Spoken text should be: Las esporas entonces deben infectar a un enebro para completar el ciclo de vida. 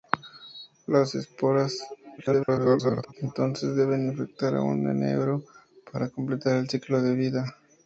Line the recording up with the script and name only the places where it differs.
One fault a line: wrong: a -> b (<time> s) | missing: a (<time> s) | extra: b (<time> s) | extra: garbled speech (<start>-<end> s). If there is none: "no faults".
extra: garbled speech (2.2-3.1 s)